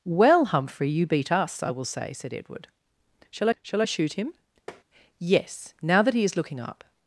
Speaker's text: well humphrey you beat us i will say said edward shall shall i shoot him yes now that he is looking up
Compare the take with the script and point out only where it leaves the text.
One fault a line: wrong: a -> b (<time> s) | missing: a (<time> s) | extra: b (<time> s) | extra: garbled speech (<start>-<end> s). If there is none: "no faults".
no faults